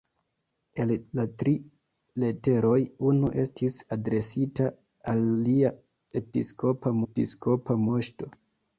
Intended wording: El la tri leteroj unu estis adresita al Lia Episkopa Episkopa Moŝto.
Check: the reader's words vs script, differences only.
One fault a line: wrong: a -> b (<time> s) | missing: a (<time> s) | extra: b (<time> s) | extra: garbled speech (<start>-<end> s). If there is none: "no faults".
no faults